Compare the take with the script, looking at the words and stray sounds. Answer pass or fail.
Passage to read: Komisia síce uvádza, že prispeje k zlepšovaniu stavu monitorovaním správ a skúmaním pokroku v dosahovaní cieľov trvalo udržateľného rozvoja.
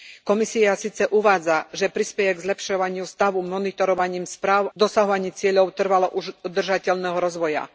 fail